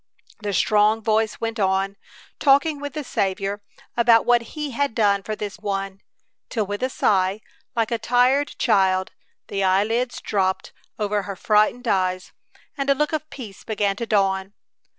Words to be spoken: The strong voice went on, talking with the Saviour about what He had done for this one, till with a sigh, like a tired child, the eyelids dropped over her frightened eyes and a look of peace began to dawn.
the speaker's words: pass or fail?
pass